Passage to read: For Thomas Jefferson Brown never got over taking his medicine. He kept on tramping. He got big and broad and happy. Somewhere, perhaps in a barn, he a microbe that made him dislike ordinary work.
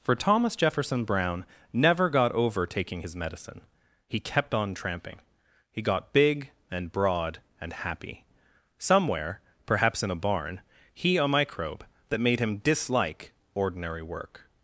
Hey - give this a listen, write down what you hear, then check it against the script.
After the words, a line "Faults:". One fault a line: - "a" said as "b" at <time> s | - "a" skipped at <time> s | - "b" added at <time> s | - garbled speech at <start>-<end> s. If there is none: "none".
For Thomas Jefferson Brown never got over taking his medicine. He kept on tramping. He got big and broad and happy. Somewhere, perhaps in a barn, he a microbe that made him dislike ordinary work.
Faults:
none